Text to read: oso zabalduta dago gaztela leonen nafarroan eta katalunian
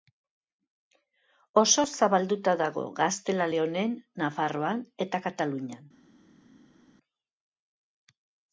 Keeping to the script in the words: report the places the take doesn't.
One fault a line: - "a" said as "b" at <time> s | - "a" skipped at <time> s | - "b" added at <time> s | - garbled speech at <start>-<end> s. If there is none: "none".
none